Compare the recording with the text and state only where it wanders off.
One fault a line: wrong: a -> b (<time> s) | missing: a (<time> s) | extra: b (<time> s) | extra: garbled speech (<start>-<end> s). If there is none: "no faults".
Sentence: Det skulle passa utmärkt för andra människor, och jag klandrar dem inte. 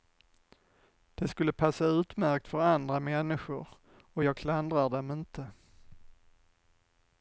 no faults